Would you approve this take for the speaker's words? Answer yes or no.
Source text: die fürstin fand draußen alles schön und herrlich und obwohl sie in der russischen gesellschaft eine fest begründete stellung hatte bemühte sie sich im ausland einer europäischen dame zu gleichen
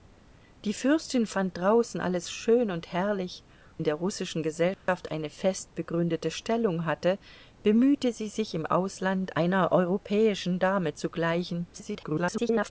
no